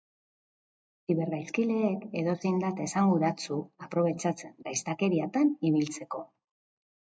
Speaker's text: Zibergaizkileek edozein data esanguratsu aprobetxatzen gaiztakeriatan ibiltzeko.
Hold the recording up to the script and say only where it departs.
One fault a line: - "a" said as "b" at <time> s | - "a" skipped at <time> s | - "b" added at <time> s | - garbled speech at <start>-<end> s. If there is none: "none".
none